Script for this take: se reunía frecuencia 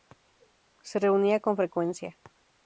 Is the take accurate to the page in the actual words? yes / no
no